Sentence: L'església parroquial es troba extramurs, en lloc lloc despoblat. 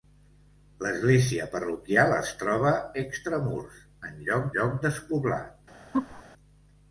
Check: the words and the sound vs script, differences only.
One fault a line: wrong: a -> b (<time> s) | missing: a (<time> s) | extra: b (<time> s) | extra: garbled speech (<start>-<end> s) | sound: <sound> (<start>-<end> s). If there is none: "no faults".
sound: laugh (5.9-6.2 s)